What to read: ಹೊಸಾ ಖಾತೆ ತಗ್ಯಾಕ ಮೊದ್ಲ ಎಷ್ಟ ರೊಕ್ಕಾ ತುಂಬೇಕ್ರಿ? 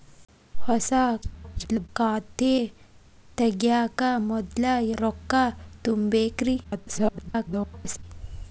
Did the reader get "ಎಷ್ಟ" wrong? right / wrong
wrong